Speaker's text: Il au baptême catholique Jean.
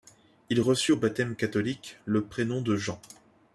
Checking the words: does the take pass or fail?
fail